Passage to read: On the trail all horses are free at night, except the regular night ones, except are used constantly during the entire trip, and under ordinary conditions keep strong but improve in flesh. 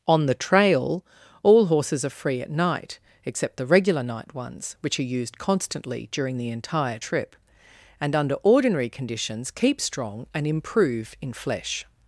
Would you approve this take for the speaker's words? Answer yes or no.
no